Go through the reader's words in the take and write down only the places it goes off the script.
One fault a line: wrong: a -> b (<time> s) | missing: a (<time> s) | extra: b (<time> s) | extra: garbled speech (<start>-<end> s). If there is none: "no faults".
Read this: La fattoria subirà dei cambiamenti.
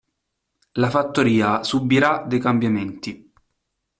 no faults